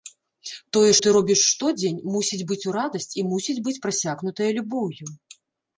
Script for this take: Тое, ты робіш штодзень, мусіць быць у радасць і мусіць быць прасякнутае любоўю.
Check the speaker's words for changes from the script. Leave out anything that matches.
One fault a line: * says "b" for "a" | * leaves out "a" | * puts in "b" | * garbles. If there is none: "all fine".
all fine